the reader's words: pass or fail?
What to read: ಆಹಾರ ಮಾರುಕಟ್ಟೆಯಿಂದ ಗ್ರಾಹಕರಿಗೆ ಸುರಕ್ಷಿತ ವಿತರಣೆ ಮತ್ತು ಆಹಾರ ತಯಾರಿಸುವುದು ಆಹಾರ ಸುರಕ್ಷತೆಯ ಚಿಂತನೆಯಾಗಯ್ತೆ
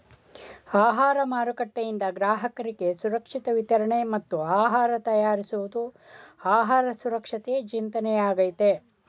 pass